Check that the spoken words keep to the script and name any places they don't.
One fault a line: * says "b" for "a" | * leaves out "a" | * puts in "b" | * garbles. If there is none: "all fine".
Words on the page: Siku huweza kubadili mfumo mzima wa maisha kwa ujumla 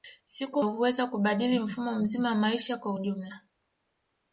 all fine